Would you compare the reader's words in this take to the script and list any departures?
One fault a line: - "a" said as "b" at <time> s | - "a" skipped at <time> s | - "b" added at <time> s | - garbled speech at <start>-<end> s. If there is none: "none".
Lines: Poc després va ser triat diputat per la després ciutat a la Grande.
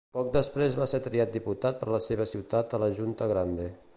- "després" said as "seva" at 2.1 s
- "Junta" added at 3.0 s